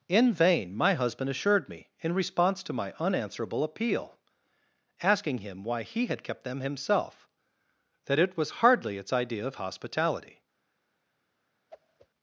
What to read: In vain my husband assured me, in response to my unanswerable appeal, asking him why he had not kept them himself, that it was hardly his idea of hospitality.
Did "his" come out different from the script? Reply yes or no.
yes